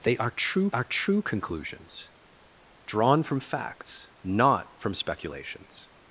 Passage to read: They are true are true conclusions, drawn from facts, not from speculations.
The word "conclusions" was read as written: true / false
true